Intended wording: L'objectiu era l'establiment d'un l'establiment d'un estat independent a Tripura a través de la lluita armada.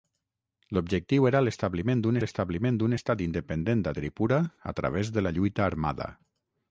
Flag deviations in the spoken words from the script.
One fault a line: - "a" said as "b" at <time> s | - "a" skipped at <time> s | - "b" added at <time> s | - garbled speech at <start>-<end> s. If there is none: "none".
none